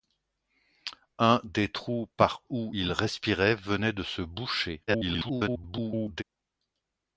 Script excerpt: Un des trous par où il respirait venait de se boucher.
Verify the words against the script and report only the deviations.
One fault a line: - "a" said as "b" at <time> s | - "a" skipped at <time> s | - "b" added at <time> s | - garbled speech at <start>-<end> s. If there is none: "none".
- garbled speech at 4.9-6.2 s